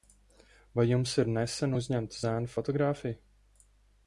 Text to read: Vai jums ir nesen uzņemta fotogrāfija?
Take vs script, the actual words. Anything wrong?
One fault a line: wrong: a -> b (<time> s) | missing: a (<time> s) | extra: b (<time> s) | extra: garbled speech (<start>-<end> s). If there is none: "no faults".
extra: zēna (2.2 s)